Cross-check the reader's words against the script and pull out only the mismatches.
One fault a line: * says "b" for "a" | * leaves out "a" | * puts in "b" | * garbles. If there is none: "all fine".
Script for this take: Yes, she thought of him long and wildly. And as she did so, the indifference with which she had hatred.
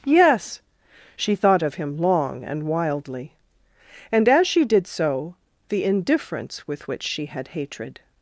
all fine